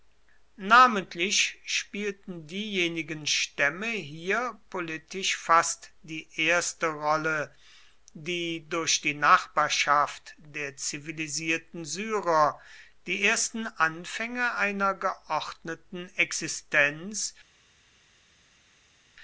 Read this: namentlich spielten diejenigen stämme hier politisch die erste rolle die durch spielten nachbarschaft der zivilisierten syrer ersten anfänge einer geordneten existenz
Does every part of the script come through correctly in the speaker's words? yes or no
no